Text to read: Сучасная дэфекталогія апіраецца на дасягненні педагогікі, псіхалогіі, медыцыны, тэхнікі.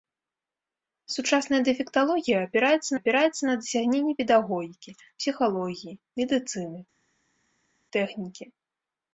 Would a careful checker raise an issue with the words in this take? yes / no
yes